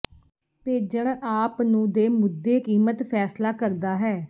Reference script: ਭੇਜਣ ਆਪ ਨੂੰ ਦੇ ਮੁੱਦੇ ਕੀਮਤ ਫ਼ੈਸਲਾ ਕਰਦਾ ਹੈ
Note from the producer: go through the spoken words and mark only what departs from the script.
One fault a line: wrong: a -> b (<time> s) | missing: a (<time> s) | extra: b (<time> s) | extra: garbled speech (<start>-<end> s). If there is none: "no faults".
no faults